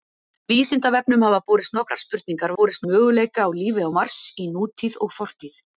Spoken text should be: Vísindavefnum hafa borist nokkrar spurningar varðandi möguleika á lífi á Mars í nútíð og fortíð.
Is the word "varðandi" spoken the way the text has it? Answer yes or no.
no